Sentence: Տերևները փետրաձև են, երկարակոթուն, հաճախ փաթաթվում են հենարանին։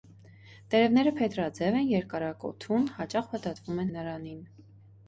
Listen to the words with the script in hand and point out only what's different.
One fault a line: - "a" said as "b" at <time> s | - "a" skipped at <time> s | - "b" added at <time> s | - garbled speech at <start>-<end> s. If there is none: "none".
- "են" skipped at 3.9 s